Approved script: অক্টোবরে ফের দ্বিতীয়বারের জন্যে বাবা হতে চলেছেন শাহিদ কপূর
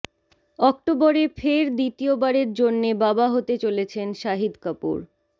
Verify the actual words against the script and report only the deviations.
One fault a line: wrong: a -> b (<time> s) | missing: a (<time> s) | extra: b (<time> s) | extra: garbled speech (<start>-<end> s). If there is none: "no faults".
no faults